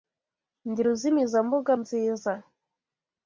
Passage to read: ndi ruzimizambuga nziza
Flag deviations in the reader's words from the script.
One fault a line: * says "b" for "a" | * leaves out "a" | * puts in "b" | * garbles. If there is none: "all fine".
all fine